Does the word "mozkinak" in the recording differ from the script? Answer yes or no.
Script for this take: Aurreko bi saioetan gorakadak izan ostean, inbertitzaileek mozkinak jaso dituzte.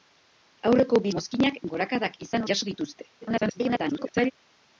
yes